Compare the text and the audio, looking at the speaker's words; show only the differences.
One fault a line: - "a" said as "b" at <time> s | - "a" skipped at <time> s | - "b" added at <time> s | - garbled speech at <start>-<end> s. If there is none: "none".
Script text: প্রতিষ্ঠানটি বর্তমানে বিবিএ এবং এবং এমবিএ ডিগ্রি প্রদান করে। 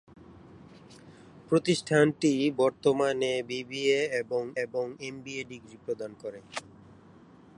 none